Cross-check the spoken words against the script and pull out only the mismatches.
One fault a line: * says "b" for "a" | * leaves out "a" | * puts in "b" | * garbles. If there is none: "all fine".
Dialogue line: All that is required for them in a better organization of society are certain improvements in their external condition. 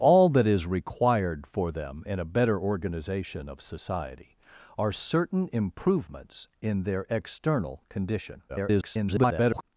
* garbles